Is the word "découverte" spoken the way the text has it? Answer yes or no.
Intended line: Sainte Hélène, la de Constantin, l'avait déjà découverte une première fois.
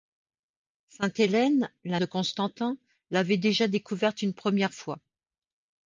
yes